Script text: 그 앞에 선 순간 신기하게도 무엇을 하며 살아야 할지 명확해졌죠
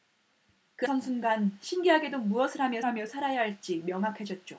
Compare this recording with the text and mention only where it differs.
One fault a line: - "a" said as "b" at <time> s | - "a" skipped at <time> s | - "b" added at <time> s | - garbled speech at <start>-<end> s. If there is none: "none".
- "앞에" skipped at 0.9 s
- "하며" added at 2.8 s